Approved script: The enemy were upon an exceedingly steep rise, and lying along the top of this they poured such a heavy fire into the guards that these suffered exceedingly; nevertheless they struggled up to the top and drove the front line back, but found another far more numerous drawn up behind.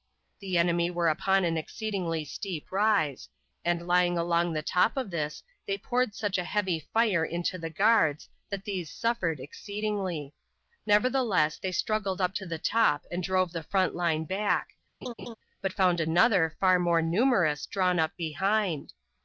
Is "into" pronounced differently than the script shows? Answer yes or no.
no